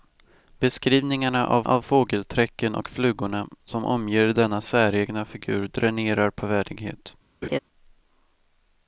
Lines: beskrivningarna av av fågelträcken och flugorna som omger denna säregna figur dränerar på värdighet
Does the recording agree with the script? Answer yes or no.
yes